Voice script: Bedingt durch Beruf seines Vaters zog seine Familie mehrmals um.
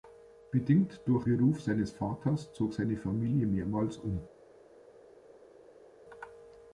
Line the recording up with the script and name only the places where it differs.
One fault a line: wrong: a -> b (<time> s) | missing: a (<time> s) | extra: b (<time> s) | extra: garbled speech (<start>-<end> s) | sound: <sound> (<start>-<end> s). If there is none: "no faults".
no faults